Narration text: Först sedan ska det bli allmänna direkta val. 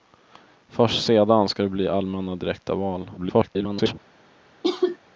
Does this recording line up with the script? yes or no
no